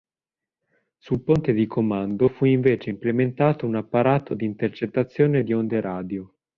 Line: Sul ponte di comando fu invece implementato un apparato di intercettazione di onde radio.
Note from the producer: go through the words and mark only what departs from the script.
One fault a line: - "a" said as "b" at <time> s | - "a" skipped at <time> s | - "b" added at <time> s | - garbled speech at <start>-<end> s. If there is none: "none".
none